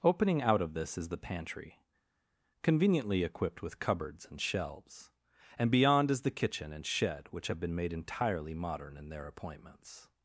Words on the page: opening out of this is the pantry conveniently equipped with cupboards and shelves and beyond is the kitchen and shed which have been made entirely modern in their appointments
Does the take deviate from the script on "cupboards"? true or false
false